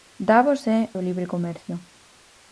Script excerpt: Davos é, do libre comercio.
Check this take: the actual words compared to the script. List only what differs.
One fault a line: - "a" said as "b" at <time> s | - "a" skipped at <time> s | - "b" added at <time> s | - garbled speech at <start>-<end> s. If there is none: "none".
none